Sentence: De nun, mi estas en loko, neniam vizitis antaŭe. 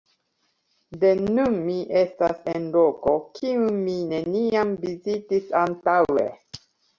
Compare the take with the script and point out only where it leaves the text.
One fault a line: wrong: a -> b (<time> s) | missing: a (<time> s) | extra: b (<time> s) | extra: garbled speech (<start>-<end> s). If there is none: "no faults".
extra: kiun mi (3.4 s)